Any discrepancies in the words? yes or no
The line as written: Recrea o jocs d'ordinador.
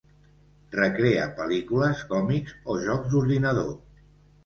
yes